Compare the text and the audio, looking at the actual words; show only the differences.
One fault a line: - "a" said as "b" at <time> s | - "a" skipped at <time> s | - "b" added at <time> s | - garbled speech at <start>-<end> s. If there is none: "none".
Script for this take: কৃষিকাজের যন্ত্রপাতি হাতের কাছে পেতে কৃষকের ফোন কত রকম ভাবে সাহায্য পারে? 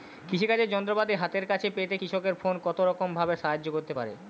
- "করতে" added at 3.7 s